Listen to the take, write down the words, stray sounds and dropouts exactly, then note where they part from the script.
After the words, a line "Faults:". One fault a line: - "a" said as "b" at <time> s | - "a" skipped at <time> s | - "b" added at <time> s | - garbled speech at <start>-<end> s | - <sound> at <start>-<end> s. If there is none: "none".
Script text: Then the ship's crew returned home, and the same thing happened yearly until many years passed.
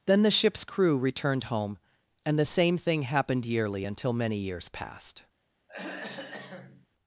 Then the ship's crew returned home, and the same thing happened yearly until many years passed.
Faults:
- throat clearing at 5.7-6.9 s